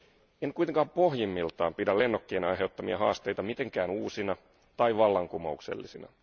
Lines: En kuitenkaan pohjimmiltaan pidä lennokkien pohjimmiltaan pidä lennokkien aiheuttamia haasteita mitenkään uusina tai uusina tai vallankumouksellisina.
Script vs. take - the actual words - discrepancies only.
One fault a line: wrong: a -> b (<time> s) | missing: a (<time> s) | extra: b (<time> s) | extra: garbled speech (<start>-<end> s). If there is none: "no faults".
missing: pohjimmiltaan pidä lennokkien (2.4 s)
missing: uusina tai (5.0 s)